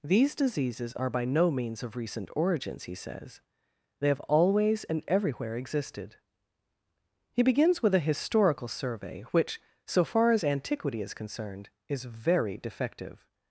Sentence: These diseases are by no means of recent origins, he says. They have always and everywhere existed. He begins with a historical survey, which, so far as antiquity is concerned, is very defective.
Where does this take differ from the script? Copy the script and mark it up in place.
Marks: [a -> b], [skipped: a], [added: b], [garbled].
These diseases are by no means of recent origins, he says. They have always and everywhere existed. He begins with a historical survey, which, so far as antiquity is concerned, is very defective.